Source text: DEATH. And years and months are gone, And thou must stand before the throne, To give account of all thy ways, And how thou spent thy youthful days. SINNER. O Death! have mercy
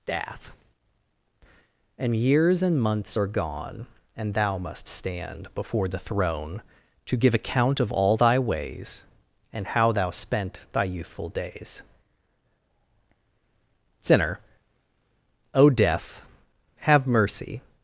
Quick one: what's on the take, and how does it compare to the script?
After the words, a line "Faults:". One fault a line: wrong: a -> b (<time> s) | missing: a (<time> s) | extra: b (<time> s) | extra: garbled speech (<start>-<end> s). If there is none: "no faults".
DEATH. And years and months are gone, And thou must stand before the throne, To give account of all thy ways, And how thou spent thy youthful days. SINNER. O Death! have mercy
Faults:
no faults